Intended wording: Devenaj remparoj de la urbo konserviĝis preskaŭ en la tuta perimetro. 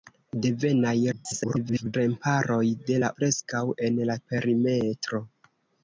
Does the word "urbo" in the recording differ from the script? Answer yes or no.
yes